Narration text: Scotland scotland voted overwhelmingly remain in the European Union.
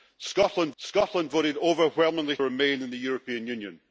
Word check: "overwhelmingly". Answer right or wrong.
right